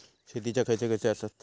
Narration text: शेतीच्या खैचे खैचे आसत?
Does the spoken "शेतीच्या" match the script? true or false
true